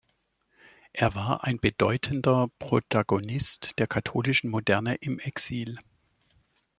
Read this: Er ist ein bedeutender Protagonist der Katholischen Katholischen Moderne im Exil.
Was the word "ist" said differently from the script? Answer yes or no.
yes